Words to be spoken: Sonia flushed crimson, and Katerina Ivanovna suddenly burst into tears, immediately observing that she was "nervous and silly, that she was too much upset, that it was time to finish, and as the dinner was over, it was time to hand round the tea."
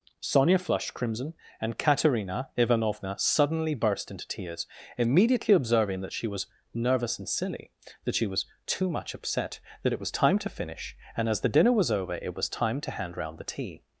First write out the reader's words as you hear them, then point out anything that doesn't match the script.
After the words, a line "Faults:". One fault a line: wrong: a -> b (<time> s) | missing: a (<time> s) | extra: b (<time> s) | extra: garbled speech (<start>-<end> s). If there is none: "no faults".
Sonia flushed crimson, and Katerina Ivanovna suddenly burst into tears, immediately observing that she was "nervous and silly, that she was too much upset, that it was time to finish, and as the dinner was over, it was time to hand round the tea."
Faults:
no faults